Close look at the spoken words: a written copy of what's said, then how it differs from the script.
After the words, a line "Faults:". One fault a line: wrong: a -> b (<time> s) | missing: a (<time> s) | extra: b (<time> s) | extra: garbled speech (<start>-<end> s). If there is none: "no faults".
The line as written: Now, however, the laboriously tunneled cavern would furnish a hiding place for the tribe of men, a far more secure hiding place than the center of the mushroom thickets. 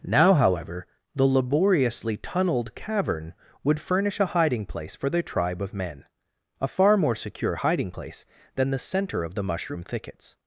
Now, however, the laboriously tunneled cavern would furnish a hiding place for the tribe of men, a far more secure hiding place than the center of the mushroom thickets.
Faults:
no faults